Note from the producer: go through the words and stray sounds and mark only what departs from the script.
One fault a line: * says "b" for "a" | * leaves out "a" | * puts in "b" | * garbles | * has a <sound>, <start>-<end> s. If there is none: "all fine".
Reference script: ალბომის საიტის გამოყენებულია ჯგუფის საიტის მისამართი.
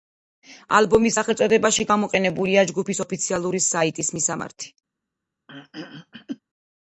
* says "სახელწოდებაში" for "საიტის"
* puts in "ოფიციალური"
* has a throat clearing, 5.5-6.4 s